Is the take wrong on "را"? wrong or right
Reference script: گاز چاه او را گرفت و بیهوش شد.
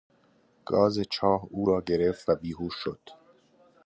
right